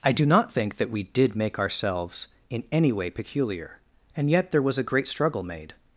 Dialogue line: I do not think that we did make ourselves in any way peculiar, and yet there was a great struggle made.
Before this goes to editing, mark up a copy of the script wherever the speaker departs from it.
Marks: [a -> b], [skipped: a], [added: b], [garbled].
I do not think that we did make ourselves in any way peculiar, and yet there was a great struggle made.